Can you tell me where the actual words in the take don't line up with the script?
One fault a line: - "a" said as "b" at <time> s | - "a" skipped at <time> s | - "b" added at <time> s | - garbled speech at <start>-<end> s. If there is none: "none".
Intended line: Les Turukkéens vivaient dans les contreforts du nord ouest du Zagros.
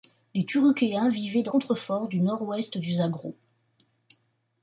- "les" skipped at 1.5 s